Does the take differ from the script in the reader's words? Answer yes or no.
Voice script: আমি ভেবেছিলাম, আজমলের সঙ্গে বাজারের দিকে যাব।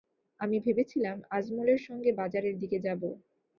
no